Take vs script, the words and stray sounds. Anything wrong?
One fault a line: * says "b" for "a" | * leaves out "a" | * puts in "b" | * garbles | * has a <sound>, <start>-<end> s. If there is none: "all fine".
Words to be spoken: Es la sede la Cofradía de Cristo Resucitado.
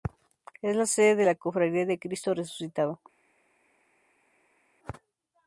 * puts in "de"